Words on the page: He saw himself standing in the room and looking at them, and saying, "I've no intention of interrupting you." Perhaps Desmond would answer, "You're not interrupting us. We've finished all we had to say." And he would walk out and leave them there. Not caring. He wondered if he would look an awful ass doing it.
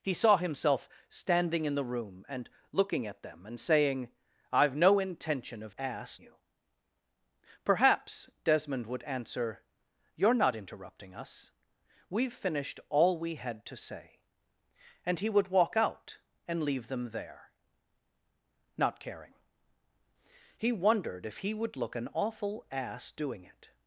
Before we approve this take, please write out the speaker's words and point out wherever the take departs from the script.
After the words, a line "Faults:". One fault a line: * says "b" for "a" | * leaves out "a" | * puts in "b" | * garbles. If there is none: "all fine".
He saw himself standing in the room and looking at them, and saying, "I've no intention of ass you." Perhaps Desmond would answer, "You're not interrupting us. We've finished all we had to say." And he would walk out and leave them there. Not caring. He wondered if he would look an awful ass doing it.
Faults:
* says "ass" for "interrupting"